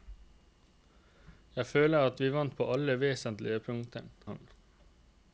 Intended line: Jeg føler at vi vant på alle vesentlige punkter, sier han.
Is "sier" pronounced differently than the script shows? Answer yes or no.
yes